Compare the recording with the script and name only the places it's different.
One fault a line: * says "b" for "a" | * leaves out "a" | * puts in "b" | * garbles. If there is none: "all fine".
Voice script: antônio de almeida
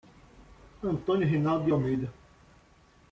* puts in "reinaldo"